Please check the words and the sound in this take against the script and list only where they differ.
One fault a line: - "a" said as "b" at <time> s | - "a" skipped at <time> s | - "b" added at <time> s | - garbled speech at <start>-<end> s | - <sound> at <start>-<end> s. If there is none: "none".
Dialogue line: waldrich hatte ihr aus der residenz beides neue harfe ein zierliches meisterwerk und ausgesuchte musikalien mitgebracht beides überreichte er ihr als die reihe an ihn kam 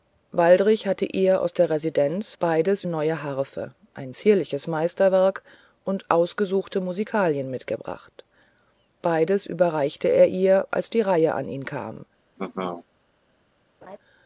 - laugh at 12.4-12.9 s
- laugh at 13.8-14.0 s